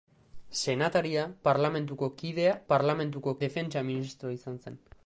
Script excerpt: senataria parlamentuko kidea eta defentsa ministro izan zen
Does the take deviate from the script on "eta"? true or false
true